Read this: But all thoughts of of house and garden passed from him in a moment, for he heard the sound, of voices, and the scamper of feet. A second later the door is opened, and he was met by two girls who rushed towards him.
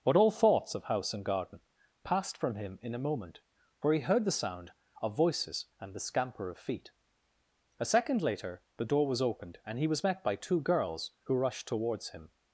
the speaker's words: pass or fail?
fail